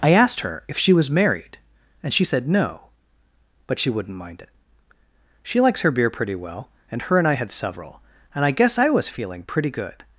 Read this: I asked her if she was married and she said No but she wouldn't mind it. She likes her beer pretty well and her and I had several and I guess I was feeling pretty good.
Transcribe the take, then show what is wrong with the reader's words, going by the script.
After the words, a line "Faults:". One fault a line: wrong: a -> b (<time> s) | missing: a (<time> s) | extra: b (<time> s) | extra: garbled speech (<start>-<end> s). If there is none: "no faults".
I asked her if she was married and she said No but she wouldn't mind it. She likes her beer pretty well and her and I had several and I guess I was feeling pretty good.
Faults:
no faults